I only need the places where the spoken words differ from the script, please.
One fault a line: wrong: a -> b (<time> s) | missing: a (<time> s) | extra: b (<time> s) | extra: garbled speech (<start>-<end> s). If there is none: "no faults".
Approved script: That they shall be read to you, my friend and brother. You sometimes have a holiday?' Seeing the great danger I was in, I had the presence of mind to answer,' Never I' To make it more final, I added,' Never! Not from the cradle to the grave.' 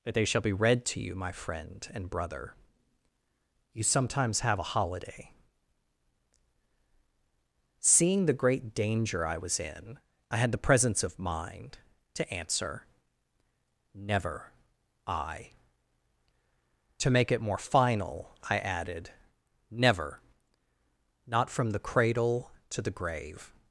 no faults